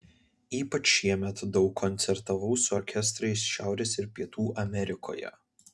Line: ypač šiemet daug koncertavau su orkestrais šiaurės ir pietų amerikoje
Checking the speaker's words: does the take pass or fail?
pass